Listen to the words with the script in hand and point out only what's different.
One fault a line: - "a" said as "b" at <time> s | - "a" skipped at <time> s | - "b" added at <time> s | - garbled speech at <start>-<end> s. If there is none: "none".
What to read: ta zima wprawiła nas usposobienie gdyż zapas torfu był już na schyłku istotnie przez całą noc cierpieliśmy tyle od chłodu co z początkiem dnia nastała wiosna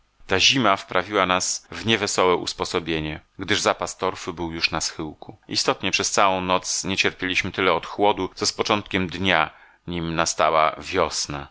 - "w niewesołe" added at 1.7 s
- "nie" added at 6.8 s
- "nim" added at 9.9 s